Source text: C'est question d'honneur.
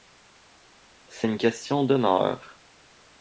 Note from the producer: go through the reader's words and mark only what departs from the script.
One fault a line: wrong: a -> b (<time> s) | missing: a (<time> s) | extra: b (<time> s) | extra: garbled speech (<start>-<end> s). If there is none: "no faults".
extra: une (1.2 s)